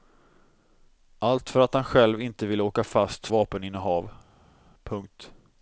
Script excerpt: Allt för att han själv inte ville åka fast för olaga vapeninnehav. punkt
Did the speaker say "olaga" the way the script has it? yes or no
no